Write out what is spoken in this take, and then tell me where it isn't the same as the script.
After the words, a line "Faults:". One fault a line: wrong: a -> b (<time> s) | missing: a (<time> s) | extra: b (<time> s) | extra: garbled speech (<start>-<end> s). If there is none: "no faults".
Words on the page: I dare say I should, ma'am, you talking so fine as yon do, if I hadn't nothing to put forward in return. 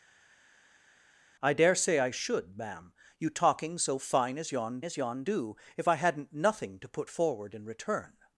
I dare say I should, ma'am, you talking so fine as yon as yon do, if I hadn't nothing to put forward in return.
Faults:
extra: as yon (4.8 s)